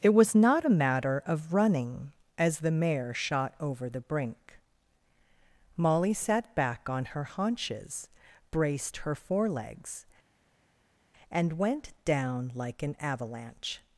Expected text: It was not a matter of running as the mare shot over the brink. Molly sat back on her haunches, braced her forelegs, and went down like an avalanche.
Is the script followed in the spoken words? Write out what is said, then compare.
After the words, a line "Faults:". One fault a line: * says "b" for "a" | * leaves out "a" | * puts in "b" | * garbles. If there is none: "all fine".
It was not a matter of running as the mare shot over the brink. Molly sat back on her haunches, braced her forelegs, and went down like an avalanche.
Faults:
all fine